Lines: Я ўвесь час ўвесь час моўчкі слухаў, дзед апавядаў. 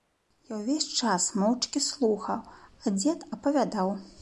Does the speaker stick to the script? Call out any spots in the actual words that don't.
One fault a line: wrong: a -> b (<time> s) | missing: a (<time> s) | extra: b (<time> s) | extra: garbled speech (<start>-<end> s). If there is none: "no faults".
missing: ўвесь час (1.3 s)
extra: а (2.8 s)